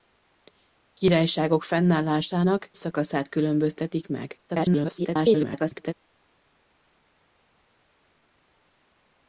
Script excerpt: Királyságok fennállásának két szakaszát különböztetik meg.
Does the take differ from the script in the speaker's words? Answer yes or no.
yes